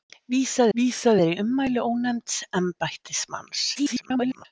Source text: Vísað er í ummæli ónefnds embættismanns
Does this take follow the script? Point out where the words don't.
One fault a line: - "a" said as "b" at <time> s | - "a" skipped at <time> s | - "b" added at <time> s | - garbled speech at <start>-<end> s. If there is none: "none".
- "vísað" added at 0.8 s
- garbled speech at 3.7-4.5 s